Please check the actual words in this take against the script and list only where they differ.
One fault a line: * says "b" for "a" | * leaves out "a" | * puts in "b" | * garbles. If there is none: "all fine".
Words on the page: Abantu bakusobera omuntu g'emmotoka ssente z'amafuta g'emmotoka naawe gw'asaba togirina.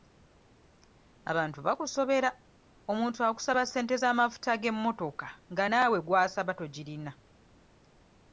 * says "akusaba" for "g'emmotoka"
* puts in "nga"